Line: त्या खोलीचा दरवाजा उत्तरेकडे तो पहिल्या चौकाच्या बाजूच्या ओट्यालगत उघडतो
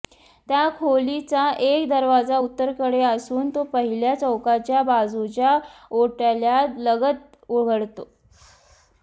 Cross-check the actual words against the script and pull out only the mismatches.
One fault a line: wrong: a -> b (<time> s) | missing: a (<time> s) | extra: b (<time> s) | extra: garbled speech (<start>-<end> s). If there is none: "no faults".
extra: एक (1.6 s)
extra: असून (3.0 s)